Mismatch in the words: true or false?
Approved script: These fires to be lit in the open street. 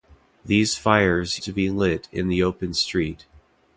false